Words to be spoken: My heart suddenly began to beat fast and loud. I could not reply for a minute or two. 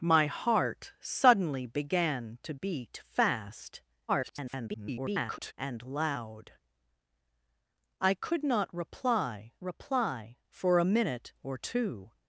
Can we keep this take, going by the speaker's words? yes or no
no